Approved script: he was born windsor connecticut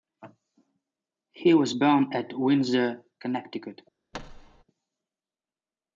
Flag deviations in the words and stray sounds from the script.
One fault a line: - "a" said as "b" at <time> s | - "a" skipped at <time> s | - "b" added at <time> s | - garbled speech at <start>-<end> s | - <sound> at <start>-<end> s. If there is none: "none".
- "at" added at 2.1 s
- thud at 4.1-4.6 s